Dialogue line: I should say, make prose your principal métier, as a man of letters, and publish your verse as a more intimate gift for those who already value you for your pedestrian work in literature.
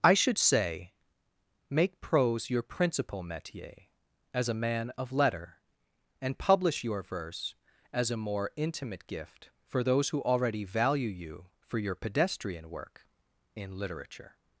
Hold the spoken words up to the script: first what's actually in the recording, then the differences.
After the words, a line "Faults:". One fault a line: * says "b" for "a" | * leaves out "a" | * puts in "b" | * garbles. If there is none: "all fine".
I should say, make prose your principal métier, as a man of letter, and publish your verse as a more intimate gift for those who already value you for your pedestrian work in literature.
Faults:
* says "letter" for "letters"